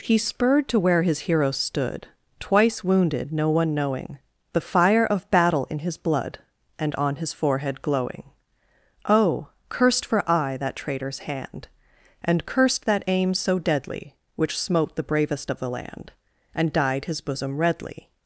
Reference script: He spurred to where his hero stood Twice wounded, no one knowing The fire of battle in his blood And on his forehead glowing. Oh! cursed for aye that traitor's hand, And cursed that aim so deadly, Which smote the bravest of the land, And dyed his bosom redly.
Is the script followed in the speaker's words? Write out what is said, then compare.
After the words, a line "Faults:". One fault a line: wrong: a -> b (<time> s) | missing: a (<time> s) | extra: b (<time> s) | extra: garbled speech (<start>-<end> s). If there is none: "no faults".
He spurred to where his hero stood Twice wounded, no one knowing The fire of battle in his blood And on his forehead glowing. Oh! cursed for aye that traitor's hand, And cursed that aim so deadly, Which smote the bravest of the land, And dyed his bosom redly.
Faults:
no faults